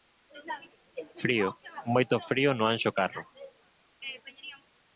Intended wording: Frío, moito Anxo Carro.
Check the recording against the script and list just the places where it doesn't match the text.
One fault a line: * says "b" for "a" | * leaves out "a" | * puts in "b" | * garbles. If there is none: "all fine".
* puts in "frío no"